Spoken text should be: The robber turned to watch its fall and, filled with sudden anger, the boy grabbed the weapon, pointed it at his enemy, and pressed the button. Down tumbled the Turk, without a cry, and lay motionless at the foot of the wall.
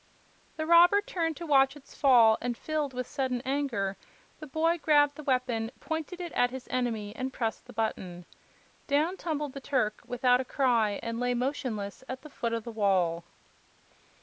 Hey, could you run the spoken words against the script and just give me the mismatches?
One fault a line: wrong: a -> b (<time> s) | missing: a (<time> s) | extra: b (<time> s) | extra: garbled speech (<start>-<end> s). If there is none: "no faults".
no faults